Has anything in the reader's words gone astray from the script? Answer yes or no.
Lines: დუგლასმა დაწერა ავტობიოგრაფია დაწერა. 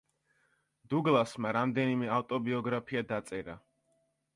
yes